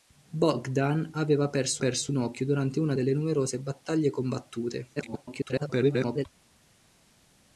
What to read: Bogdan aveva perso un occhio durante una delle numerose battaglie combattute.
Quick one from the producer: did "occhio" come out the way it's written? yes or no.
yes